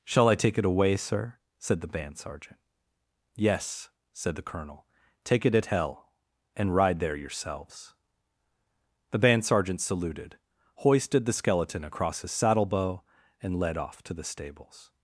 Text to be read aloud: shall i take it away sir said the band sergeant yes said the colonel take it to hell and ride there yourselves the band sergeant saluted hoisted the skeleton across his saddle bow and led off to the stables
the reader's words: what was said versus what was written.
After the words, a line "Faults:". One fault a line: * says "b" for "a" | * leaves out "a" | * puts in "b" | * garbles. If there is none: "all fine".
shall i take it away sir said the band sergeant yes said the colonel take it at hell and ride there yourselves the band sergeant saluted hoisted the skeleton across his saddle bow and led off to the stables
Faults:
* says "at" for "to"